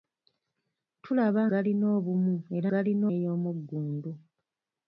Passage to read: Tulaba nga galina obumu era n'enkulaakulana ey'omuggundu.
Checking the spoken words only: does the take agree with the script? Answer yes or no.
no